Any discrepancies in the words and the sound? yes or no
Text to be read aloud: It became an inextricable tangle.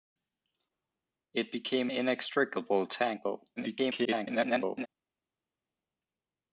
yes